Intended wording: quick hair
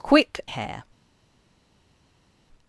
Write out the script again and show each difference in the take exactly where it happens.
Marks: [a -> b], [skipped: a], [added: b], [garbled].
quick hair